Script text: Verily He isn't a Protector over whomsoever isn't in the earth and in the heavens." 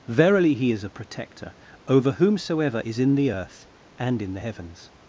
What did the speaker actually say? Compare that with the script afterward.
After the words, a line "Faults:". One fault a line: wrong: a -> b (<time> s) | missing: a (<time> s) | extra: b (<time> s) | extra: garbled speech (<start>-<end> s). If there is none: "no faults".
Verily He is a Protector over whomsoever is in the earth and in the heavens."
Faults:
wrong: isn't -> is (0.7 s)
wrong: isn't -> is (2.8 s)